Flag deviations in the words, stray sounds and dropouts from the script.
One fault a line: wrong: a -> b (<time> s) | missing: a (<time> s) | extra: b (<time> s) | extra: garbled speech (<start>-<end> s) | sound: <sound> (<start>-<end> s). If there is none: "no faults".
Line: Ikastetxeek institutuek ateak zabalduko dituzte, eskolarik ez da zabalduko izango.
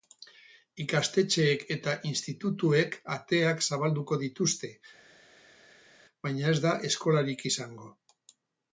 extra: eta (1.8 s)
wrong: eskolarik -> baina (6.3 s)
wrong: zabalduko -> eskolarik (6.9 s)